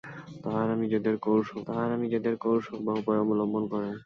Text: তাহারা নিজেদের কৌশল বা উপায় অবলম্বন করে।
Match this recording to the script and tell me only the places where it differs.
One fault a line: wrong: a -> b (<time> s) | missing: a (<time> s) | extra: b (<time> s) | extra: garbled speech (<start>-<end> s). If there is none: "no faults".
extra: তাহারা নিজেদের কৌশল (1.7 s)